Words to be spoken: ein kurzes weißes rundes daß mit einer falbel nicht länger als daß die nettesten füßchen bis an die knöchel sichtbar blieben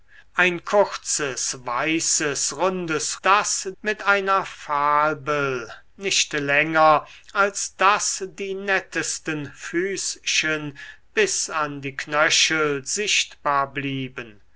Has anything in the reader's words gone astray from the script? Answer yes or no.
no